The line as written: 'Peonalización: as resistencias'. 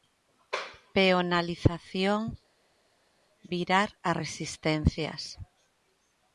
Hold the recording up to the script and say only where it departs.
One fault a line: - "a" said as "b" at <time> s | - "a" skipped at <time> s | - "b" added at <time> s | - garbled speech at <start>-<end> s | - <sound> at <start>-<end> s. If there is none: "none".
- "virar" added at 3.5 s